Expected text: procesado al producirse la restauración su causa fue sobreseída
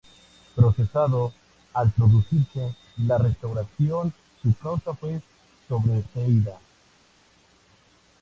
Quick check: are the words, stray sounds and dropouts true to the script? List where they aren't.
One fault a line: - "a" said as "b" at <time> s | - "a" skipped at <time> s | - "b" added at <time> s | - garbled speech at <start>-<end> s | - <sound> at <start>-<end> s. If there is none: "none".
none